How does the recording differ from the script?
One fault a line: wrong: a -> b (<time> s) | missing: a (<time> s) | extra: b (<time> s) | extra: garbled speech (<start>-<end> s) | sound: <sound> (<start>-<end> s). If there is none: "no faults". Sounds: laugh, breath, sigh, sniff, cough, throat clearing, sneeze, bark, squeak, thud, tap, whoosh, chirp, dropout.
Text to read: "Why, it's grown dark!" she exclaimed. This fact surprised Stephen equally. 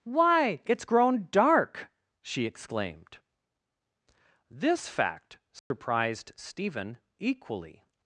sound: dropout (5.6-5.7 s)